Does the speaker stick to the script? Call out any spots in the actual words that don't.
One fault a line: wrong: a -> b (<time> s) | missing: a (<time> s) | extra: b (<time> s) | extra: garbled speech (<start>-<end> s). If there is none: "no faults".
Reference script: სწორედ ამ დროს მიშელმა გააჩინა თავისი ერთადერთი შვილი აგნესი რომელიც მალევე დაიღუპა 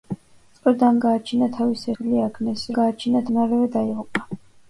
missing: დროს მიშელმა (0.9 s)
missing: ერთადერთი (1.9 s)
wrong: რომელიც -> გააჩინა (2.8 s)